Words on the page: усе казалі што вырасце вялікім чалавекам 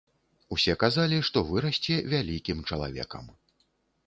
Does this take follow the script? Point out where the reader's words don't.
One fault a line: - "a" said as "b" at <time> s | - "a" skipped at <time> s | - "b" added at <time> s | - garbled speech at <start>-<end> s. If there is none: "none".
none